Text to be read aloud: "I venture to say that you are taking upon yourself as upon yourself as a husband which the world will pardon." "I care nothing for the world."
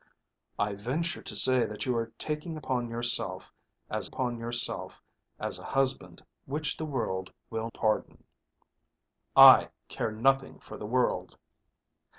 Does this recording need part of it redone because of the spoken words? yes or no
no